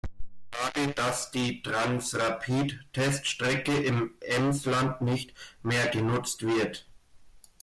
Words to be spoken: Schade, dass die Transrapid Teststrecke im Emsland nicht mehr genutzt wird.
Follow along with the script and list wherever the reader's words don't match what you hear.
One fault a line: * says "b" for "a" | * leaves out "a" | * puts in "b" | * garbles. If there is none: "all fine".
all fine